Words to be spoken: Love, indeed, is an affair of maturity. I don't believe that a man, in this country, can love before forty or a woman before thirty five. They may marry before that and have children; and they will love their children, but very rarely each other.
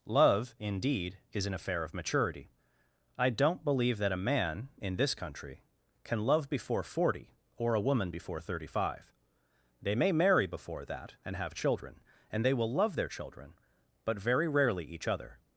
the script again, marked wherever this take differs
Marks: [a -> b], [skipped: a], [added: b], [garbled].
Love, indeed, is an affair of maturity. I don't believe that a man, in this country, can love before forty or a woman before thirty five. They may marry before that and have children; and they will love their children, but very rarely each other.